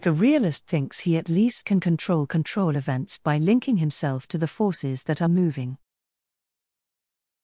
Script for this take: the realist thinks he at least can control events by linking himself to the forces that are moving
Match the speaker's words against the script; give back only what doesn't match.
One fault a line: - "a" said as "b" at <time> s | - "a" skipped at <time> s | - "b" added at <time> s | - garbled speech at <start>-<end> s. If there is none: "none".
- "control" added at 2.3 s